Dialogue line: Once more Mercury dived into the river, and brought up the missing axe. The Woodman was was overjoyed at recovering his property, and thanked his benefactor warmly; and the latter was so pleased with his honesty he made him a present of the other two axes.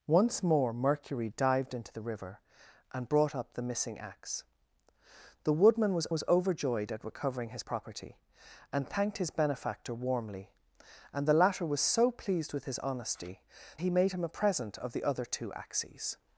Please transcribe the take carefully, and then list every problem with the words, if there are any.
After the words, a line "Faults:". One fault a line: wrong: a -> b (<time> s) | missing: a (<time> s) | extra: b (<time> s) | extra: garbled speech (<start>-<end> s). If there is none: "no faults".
Once more Mercury dived into the river, and brought up the missing axe. The Woodman was was overjoyed at recovering his property, and thanked his benefactor warmly; and the latter was so pleased with his honesty he made him a present of the other two axes.
Faults:
no faults